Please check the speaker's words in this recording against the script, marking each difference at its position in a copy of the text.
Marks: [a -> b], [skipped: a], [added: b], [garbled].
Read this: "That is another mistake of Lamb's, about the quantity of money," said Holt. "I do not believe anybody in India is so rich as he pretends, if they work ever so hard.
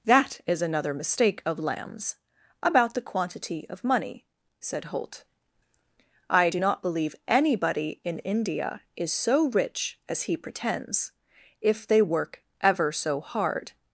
"That is another mistake of Lamb's, about the quantity of money," said Holt. "I do not believe anybody in India is so rich as he pretends, if they work ever so hard.